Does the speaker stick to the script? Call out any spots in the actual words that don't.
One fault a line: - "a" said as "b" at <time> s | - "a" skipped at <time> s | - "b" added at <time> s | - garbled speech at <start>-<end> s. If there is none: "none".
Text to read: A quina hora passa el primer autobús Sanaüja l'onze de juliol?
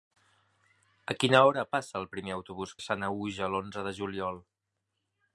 none